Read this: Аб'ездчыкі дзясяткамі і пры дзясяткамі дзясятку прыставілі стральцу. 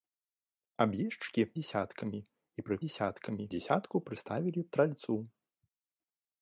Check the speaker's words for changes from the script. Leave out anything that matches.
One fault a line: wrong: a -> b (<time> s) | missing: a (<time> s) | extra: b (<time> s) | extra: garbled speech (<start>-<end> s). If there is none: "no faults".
no faults